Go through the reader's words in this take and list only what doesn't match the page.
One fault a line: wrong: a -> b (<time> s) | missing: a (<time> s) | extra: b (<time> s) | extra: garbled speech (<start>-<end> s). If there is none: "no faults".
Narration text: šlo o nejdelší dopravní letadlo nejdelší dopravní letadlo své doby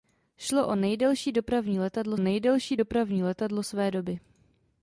no faults